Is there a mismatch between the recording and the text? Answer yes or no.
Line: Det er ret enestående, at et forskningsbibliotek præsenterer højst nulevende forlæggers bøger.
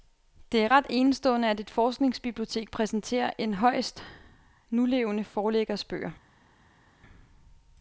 yes